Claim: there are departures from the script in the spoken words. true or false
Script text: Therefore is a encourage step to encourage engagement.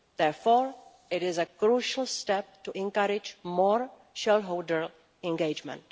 true